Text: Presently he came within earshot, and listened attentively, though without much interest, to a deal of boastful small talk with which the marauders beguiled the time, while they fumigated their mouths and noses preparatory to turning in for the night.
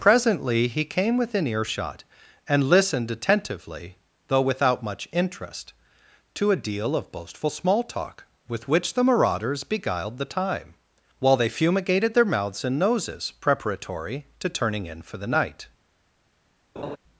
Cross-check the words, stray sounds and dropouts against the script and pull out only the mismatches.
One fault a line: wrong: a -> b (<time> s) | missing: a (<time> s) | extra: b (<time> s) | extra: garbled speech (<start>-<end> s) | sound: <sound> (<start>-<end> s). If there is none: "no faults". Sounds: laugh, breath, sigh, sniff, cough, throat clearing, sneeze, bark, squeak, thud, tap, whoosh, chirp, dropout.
sound: laugh (16.8-17.0 s)